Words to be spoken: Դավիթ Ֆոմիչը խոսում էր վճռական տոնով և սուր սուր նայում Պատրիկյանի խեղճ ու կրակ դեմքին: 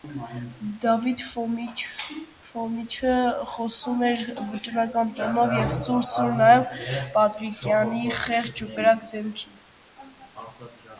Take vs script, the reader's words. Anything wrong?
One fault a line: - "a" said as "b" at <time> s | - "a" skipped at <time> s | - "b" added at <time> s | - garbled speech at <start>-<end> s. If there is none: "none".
none